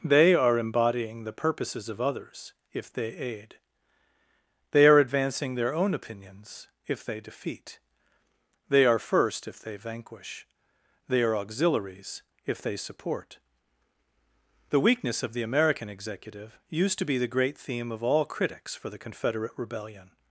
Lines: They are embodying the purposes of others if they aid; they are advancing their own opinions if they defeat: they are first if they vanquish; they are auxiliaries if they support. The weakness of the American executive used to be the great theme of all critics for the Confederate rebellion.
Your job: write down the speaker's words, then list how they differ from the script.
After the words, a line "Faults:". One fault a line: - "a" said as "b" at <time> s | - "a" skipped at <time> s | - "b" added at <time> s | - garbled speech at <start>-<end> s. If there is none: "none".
They are embodying the purposes of others if they aid; they are advancing their own opinions if they defeat: they are first if they vanquish; they are auxiliaries if they support. The weakness of the American executive used to be the great theme of all critics for the Confederate rebellion.
Faults:
none